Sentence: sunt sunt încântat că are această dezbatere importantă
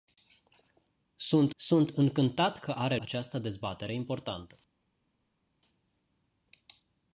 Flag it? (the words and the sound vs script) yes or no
no